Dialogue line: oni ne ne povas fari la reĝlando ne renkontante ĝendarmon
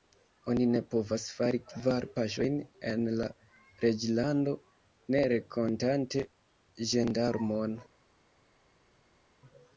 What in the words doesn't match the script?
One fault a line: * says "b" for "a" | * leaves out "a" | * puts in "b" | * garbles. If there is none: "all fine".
* leaves out "ne"
* puts in "kvar paŝojn en"